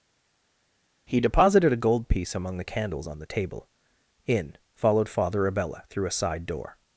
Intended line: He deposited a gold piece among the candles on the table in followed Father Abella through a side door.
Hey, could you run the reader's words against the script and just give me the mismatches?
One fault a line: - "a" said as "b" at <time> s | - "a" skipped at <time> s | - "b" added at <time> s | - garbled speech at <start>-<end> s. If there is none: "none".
none